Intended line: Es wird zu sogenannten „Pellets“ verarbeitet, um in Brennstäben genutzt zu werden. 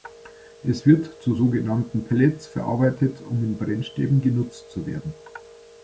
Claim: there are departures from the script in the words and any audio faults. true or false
false